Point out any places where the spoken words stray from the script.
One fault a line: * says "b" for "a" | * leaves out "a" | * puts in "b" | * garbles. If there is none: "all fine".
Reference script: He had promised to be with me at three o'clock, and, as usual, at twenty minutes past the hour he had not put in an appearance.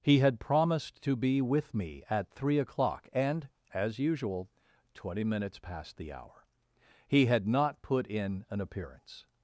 * leaves out "at"